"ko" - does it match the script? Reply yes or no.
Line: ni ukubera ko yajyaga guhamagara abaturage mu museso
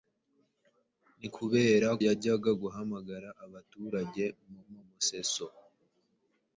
no